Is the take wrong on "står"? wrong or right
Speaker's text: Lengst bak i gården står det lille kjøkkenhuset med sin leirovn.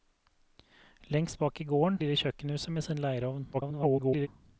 wrong